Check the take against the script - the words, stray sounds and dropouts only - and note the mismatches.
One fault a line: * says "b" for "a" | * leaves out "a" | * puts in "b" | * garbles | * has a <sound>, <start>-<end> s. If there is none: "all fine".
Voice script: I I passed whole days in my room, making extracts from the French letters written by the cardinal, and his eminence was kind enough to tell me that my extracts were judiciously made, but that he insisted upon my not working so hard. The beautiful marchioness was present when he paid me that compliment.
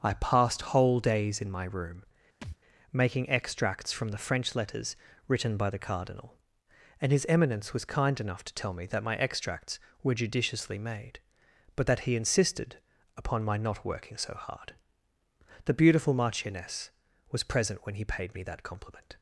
* leaves out "I"
* has a thud, 2.4-2.6 s